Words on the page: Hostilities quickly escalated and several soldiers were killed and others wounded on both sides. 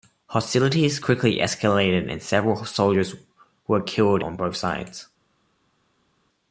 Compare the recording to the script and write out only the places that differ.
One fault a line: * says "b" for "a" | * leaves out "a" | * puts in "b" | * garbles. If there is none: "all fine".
* leaves out "and others wounded"